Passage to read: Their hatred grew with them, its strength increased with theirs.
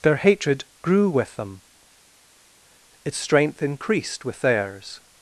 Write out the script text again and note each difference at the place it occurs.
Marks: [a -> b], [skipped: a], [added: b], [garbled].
Their hatred grew with them, its strength increased with theirs.